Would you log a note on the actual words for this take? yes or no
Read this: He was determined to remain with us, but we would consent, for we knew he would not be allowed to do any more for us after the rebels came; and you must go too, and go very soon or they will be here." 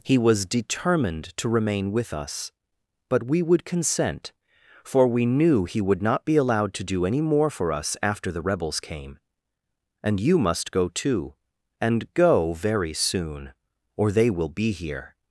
no